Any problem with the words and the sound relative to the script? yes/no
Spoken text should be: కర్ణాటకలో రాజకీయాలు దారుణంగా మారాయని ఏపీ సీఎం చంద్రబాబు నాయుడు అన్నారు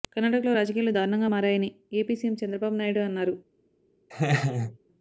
yes